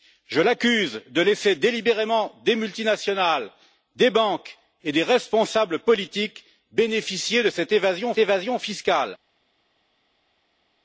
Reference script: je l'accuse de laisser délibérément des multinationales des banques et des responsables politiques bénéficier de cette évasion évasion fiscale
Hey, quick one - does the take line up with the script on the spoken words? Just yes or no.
yes